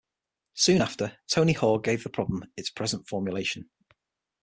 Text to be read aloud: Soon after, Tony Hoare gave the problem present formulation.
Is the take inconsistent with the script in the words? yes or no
yes